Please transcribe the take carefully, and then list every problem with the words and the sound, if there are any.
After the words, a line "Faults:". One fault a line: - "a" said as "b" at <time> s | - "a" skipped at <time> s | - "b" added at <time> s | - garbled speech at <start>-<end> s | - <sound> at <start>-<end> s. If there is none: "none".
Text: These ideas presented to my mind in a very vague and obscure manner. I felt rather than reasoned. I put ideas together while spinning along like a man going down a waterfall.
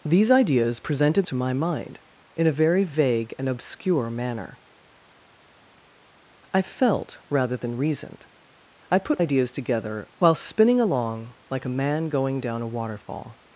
These ideas presented to my mind in a very vague and obscure manner. I felt rather than reasoned. I put ideas together while spinning along like a man going down a waterfall.
Faults:
none